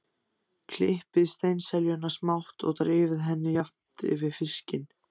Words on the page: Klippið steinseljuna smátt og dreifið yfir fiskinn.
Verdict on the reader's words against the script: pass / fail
fail